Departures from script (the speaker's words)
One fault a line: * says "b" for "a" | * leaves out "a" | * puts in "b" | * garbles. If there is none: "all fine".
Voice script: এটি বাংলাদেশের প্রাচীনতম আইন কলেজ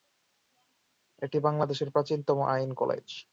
all fine